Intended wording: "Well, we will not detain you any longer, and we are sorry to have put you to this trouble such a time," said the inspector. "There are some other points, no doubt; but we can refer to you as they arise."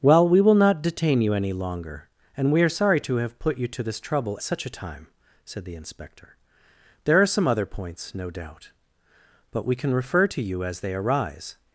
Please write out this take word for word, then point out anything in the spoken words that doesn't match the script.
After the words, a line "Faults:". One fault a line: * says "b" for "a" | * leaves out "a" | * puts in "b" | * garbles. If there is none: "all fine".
"Well, we will not detain you any longer, and we are sorry to have put you to this trouble such a time," said the inspector. "There are some other points, no doubt; but we can refer to you as they arise."
Faults:
all fine